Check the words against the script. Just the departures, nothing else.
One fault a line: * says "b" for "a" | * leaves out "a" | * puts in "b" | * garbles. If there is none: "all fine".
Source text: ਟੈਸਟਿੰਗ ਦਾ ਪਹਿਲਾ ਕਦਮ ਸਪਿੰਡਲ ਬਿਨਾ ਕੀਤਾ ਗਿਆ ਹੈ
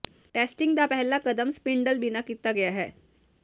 all fine